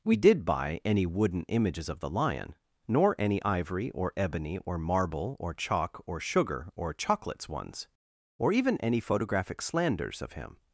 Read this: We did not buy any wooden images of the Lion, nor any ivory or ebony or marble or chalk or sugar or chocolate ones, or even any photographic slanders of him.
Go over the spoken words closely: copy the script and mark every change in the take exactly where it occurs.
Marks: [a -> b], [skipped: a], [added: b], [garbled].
We did [skipped: not] buy any wooden images of the Lion, nor any ivory or ebony or marble or chalk or sugar or [chocolate -> chocolates] ones, or even any photographic slanders of him.